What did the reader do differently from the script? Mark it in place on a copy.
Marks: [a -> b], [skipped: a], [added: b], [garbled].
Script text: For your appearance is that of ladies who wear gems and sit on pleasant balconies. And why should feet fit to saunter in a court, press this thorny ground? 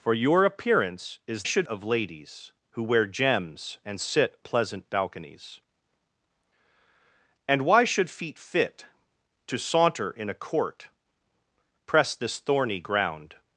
For your appearance is [that -> should] of ladies who wear gems and sit [skipped: on] pleasant balconies. And why should feet fit to saunter in a court, press this thorny ground?